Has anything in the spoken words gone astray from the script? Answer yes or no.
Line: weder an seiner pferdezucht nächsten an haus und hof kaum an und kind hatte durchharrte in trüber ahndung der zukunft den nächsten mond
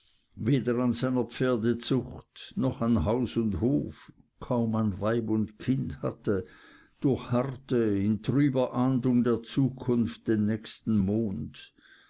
yes